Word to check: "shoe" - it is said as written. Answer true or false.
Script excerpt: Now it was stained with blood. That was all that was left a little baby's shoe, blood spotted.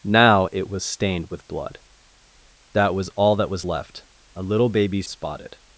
false